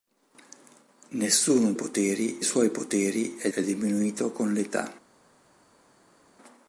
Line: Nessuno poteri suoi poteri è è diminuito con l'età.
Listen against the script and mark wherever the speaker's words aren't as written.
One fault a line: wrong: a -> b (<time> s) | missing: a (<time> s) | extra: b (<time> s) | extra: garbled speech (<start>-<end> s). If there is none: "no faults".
no faults